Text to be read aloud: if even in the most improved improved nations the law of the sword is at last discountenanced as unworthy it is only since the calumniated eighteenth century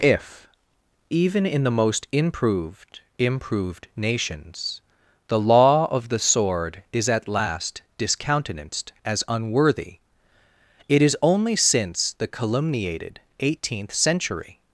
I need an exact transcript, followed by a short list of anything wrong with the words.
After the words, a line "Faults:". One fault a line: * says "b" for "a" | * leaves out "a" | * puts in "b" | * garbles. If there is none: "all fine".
if even in the most improved improved nations the law of the sword is at last discountenanced as unworthy it is only since the calumniated eighteenth century
Faults:
all fine